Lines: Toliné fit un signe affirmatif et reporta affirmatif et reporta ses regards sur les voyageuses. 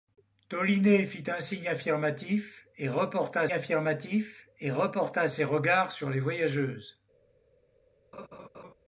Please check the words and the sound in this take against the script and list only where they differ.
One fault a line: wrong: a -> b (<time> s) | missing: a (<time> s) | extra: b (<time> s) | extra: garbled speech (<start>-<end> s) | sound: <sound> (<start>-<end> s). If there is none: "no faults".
sound: laugh (8.1-8.7 s)